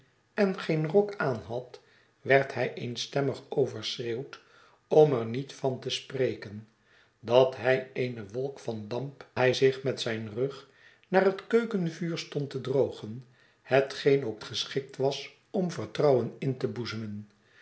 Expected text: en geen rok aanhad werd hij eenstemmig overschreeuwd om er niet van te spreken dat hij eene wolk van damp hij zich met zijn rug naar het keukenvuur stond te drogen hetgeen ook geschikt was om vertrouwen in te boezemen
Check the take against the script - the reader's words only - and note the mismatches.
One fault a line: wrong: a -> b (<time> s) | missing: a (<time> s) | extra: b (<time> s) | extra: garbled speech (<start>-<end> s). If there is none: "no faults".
no faults